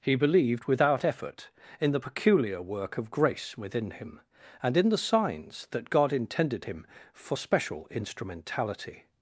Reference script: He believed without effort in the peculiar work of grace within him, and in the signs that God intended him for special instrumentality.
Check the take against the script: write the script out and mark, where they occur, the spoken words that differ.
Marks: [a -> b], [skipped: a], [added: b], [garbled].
He believed without effort in the peculiar work of grace within him, and in the signs that God intended him for special instrumentality.